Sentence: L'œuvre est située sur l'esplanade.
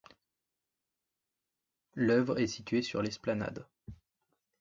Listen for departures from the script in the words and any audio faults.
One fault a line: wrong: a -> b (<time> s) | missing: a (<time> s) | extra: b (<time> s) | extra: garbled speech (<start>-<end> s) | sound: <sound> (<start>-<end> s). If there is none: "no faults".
no faults